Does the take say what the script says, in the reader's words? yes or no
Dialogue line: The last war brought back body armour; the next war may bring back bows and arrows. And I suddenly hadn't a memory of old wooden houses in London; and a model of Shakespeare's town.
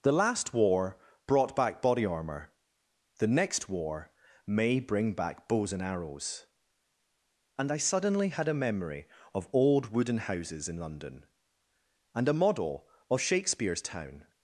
no